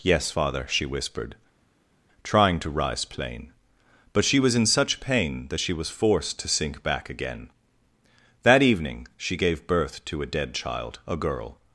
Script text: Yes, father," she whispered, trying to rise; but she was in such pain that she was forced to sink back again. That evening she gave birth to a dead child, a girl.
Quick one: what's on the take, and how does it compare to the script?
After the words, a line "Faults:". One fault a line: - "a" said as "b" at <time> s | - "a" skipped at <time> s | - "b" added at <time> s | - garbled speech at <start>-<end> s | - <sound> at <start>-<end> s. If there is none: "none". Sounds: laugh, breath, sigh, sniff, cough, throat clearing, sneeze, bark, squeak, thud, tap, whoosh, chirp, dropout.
Yes, father," she whispered, trying to rise; plain but she was in such pain that she was forced to sink back again. That evening she gave birth to a dead child, a girl.
Faults:
- "plain" added at 3.1 s